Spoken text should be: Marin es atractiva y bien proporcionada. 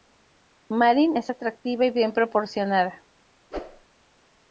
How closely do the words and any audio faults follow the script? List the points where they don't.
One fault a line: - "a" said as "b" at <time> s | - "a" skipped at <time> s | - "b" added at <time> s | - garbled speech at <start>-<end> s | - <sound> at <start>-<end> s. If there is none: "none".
- whoosh at 3.5-3.9 s